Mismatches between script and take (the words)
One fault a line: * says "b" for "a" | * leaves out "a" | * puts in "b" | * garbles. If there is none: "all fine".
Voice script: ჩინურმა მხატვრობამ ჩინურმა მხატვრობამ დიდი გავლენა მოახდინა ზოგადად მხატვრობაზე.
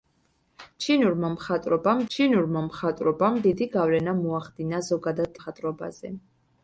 all fine